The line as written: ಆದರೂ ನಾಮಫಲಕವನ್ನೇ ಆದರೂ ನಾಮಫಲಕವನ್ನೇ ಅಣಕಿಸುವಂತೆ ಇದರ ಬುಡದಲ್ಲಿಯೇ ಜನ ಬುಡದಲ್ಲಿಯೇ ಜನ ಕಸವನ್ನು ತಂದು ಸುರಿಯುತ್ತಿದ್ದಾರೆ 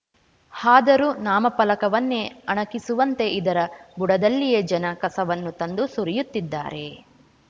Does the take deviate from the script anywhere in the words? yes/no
yes